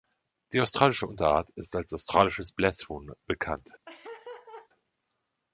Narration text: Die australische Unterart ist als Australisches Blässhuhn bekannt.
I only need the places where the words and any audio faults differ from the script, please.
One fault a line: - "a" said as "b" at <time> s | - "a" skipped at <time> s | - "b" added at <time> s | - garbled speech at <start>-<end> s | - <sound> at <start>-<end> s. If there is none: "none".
- laugh at 3.9-4.7 s